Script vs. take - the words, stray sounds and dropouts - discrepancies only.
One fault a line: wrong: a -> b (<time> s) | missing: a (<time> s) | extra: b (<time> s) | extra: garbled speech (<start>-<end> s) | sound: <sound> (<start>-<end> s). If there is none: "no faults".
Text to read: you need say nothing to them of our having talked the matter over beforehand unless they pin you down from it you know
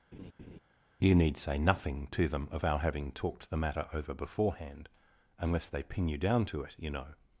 sound: laugh (0.1-0.6 s)
wrong: from -> to (6.5 s)